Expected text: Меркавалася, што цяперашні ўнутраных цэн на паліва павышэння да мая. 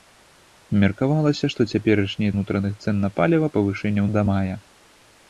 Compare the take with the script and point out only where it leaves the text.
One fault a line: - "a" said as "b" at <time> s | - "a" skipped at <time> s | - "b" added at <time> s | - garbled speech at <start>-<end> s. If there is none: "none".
none